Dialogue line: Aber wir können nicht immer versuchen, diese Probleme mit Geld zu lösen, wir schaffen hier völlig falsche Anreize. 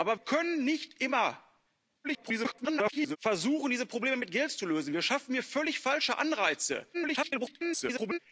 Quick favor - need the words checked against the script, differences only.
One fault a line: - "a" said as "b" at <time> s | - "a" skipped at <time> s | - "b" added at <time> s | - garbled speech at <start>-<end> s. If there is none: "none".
- "wir" skipped at 0.2 s
- garbled speech at 2.0-3.2 s
- garbled speech at 6.9-8.2 s